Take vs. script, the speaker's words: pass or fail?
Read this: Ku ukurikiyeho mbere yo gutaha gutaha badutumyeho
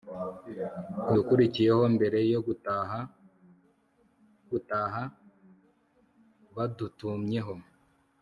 pass